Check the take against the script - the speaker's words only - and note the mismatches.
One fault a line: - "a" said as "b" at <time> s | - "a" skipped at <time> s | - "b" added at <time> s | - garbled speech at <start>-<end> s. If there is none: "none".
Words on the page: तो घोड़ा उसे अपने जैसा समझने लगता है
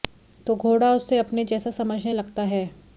none